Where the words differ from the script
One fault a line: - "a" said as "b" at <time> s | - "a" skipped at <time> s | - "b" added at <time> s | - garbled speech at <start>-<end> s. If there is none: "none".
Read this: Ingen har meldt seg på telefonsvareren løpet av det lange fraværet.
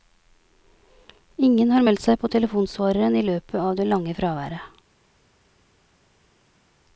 - "i" added at 3.2 s